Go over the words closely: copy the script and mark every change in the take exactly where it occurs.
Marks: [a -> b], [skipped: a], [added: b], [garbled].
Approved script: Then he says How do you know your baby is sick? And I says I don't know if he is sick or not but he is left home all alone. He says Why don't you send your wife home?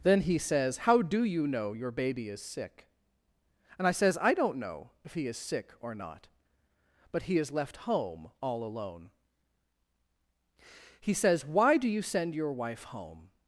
Then he says How do you know your baby is sick? And I says I don't know if he is sick or not but he is left home all alone. He says Why [don't -> do] you send your wife home?